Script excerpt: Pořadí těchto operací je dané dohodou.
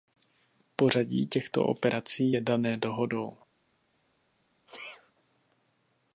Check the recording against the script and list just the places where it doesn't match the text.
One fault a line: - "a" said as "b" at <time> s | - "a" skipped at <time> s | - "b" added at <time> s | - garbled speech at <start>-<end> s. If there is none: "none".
none